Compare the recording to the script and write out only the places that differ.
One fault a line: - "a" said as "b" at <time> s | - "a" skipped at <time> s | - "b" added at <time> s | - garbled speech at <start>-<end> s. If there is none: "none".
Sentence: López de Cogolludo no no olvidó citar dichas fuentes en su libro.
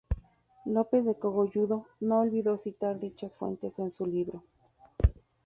- "no" skipped at 2.2 s